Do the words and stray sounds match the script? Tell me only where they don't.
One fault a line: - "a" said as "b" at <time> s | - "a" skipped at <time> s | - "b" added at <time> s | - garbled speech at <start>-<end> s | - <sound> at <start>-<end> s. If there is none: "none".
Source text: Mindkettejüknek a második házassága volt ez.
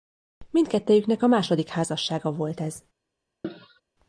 - cough at 3.4-3.8 s